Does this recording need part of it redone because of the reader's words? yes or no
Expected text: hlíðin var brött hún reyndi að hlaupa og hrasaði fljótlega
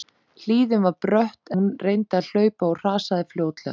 no